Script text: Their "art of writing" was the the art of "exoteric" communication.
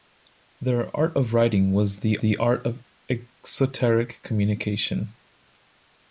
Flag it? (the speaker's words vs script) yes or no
no